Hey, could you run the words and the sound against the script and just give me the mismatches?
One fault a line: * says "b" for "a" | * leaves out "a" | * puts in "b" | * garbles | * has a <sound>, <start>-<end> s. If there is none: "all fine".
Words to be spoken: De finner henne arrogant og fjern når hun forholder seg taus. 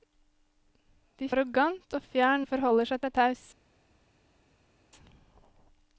* leaves out "finner henne"
* leaves out "når"
* puts in "seg"